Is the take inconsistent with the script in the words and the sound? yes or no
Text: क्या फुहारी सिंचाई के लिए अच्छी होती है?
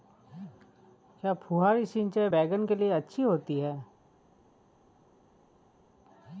yes